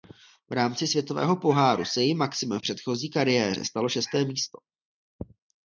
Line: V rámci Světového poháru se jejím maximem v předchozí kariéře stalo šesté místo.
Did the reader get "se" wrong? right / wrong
right